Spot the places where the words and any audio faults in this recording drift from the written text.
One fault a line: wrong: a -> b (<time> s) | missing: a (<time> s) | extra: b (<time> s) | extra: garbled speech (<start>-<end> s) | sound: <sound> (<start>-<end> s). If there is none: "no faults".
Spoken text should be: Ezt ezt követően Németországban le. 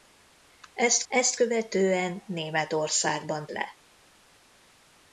no faults